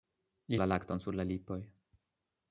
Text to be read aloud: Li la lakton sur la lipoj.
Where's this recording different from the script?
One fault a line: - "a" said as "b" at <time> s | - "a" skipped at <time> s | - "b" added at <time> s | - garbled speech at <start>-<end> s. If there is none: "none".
none